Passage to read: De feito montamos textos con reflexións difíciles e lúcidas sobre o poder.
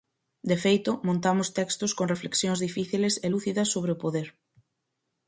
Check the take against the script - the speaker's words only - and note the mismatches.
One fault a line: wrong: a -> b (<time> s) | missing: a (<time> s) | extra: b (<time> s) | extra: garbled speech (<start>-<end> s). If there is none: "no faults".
no faults